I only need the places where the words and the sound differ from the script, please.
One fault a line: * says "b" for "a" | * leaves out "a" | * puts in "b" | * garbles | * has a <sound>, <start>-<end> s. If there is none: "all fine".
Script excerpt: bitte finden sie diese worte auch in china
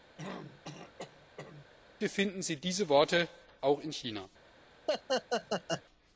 * has a throat clearing, 0.2-1.7 s
* has a laugh, 4.9-5.8 s